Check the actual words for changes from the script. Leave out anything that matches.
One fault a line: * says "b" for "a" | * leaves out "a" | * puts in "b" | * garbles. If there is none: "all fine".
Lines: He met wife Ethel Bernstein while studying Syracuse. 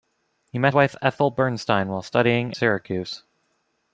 all fine